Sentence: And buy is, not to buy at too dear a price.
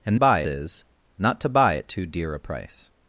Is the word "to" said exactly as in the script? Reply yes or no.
yes